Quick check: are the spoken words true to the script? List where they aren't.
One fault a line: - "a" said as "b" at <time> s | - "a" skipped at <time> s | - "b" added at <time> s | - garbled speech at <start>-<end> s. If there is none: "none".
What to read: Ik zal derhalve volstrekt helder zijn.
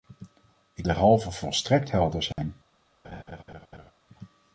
- "zal" skipped at 0.9 s